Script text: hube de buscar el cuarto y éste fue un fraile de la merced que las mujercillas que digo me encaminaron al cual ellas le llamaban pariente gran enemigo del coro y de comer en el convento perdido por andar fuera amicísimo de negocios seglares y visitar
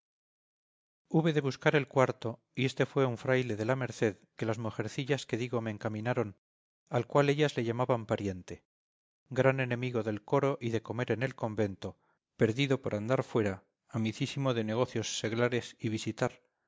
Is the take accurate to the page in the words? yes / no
yes